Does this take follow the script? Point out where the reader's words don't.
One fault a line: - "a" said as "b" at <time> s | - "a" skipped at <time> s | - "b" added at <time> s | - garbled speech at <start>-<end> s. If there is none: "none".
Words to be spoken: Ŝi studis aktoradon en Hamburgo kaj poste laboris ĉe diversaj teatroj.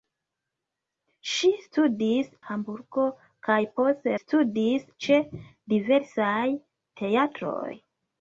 - "aktoradon en" skipped at 2.3 s
- "laboris" said as "studis" at 4.2 s